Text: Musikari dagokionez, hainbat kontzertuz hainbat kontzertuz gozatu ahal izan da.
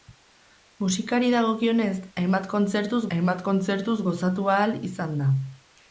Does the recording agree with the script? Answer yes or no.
yes